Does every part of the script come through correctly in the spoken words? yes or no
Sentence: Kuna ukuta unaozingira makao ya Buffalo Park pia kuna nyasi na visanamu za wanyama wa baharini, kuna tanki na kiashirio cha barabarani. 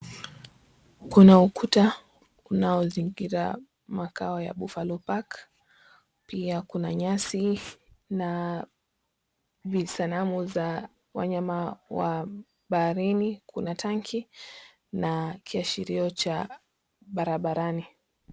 yes